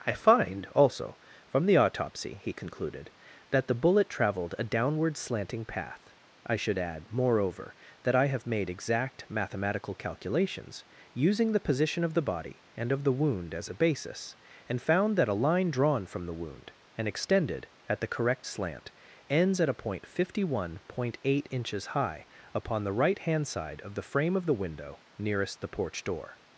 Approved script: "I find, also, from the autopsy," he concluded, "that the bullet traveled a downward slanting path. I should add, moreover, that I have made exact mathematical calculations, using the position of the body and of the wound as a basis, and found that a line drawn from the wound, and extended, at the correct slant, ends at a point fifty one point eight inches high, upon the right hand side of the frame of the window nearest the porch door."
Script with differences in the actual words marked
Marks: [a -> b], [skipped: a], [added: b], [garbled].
"I find, also, from the autopsy," he concluded, "that the bullet traveled a downward slanting path. I should add, moreover, that I have made exact mathematical calculations, using the position of the body and of the wound as a basis, and found that a line drawn from the wound, and extended, at the correct slant, ends at a point fifty one point eight inches high, upon the right hand side of the frame of the window nearest the porch door."